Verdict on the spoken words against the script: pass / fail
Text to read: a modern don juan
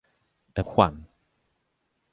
fail